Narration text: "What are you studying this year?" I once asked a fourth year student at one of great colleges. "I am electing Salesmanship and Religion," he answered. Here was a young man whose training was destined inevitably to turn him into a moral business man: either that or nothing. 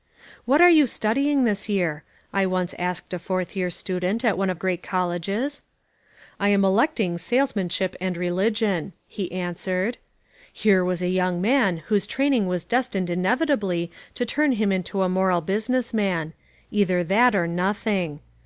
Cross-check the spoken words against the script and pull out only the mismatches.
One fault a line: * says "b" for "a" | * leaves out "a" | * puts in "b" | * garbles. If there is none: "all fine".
all fine